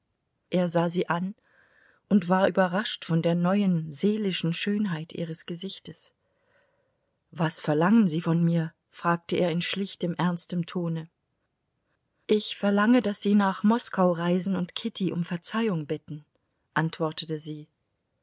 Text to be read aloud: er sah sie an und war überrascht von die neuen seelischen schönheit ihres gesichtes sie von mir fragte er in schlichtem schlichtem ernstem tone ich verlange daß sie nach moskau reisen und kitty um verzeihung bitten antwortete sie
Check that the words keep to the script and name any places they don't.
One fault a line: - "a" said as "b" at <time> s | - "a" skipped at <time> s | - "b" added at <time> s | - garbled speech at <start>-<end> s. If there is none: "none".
- "die" said as "der" at 3.2 s
- "was verlangen" added at 7.3 s
- "schlichtem" skipped at 10.1 s